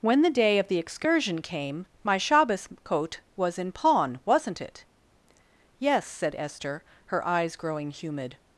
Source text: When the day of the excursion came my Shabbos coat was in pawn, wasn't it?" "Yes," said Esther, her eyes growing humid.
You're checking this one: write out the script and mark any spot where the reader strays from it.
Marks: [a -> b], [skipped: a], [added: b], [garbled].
When the day of the excursion came my Shabbos coat was in pawn, wasn't it?" "Yes," said Esther, her eyes growing humid.